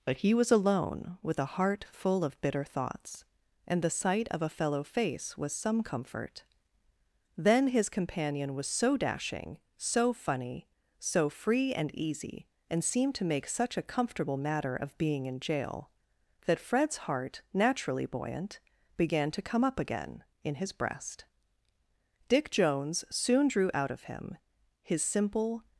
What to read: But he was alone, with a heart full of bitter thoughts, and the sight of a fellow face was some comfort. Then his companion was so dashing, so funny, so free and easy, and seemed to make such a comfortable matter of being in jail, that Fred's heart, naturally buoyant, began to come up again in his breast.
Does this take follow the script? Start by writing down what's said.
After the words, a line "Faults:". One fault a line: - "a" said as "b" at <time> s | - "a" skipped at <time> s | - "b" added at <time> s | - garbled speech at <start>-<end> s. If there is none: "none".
But he was alone, with a heart full of bitter thoughts, and the sight of a fellow face was some comfort. Then his companion was so dashing, so funny, so free and easy, and seemed to make such a comfortable matter of being in jail, that Fred's heart, naturally buoyant, began to come up again in his breast. Dick Jones soon drew out of him his simple
Faults:
- "Dick Jones soon drew out of him his simple" added at 22.3 s